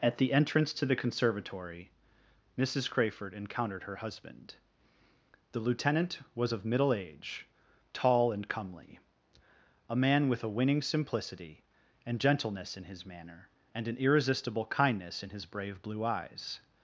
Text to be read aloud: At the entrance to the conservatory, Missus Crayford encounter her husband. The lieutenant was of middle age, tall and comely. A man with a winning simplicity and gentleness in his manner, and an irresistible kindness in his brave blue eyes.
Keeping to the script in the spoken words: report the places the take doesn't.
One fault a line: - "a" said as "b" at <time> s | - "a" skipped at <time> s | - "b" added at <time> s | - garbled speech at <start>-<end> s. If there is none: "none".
- "encounter" said as "encountered" at 3.4 s